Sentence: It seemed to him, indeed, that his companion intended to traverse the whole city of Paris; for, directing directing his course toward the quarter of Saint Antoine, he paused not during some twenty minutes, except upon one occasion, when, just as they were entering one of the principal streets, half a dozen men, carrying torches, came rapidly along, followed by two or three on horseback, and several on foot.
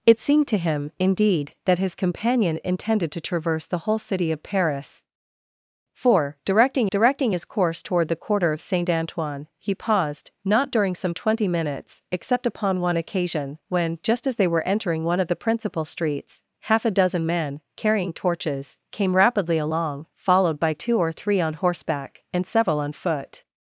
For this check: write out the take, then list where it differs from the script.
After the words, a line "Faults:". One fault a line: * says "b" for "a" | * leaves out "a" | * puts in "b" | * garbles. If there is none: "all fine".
It seemed to him, indeed, that his companion intended to traverse the whole city of Paris; for, directing directing his course toward the quarter of Saint Antoine, he paused not during some twenty minutes, except upon one occasion, when, just as they were entering one of the principal streets, half a dozen men, carrying torches, came rapidly along, followed by two or three on horseback, and several on foot.
Faults:
all fine